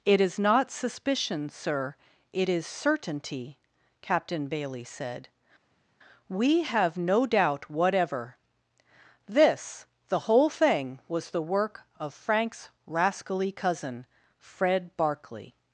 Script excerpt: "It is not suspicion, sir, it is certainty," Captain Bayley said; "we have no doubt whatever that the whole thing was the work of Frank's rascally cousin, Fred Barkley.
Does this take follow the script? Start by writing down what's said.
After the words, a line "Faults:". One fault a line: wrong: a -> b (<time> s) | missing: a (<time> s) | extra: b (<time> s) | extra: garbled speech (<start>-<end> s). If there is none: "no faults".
"It is not suspicion, sir, it is certainty," Captain Bayley said; "we have no doubt whatever this the whole thing was the work of Frank's rascally cousin, Fred Barkley.
Faults:
wrong: that -> this (9.3 s)